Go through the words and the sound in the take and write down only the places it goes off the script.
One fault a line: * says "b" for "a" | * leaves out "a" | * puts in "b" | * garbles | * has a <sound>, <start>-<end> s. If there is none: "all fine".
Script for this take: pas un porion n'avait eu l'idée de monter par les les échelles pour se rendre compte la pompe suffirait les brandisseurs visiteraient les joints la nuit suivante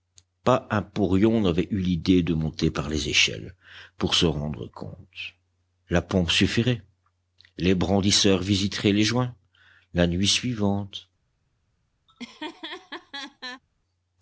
* leaves out "les"
* has a laugh, 12.1-13.6 s